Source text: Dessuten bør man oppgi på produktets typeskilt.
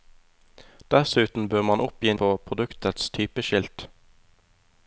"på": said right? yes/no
yes